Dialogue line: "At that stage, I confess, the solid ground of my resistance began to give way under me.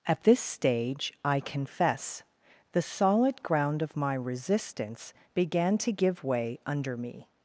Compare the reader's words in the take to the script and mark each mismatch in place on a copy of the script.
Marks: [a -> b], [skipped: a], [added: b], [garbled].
"At [that -> this] stage, I confess, the solid ground of my resistance began to give way under me.